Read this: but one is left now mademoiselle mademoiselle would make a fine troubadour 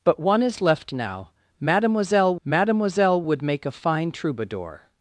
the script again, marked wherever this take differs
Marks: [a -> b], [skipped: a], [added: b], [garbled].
but one is left now mademoiselle mademoiselle would make a fine troubadour